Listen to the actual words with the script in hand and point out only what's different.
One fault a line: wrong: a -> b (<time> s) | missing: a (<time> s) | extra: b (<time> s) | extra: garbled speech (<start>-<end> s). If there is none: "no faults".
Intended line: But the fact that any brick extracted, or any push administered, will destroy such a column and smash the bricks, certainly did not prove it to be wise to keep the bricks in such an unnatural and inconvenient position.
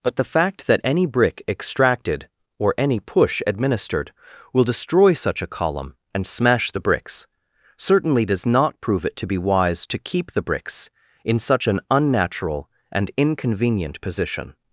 wrong: did -> does (8.2 s)